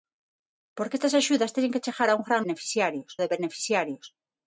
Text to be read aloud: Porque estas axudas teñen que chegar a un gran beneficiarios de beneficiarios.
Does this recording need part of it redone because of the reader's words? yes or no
no